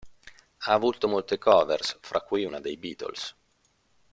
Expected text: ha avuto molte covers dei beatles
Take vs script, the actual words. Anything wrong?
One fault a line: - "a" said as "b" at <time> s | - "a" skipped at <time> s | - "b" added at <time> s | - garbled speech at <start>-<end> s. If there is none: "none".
- "fra cui una" added at 2.0 s